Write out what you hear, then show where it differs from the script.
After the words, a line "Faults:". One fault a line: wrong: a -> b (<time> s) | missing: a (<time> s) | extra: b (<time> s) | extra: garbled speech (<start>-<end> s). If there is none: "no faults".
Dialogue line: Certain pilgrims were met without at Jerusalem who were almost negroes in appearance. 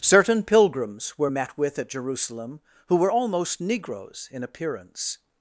Certain pilgrims were met with at Jerusalem who were almost negroes in appearance.
Faults:
wrong: without -> with (1.6 s)